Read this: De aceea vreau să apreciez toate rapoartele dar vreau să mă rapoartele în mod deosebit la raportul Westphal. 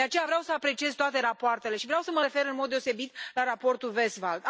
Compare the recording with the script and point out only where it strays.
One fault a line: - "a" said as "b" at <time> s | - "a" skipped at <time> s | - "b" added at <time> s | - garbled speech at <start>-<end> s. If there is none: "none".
- "dar" said as "și" at 1.7 s
- "rapoartele" said as "refer" at 2.2 s